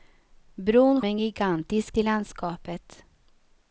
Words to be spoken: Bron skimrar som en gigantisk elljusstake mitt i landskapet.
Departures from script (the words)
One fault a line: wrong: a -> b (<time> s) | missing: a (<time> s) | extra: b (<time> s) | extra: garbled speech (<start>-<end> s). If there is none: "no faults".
missing: skimrar som (1.0 s)
missing: elljusstake mitt (2.0 s)